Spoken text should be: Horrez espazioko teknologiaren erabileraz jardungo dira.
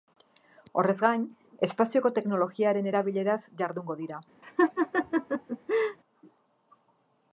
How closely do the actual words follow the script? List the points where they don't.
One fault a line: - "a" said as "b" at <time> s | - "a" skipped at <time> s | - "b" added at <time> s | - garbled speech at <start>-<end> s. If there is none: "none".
- "gain" added at 1.0 s